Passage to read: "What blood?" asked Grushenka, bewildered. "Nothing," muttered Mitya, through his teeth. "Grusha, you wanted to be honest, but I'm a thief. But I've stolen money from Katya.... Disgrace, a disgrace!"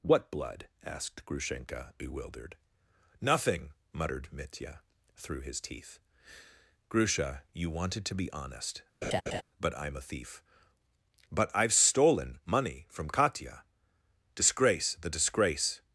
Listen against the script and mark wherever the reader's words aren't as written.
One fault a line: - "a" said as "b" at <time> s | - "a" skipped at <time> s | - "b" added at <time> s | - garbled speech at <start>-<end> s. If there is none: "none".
- "a" said as "the" at 15.0 s